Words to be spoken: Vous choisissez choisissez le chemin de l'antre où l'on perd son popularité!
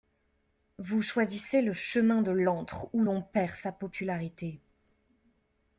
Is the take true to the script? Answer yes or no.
no